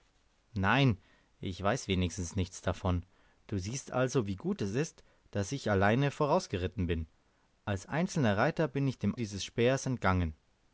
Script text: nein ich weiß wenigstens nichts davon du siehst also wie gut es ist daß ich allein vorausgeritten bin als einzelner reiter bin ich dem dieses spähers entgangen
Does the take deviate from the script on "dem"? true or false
false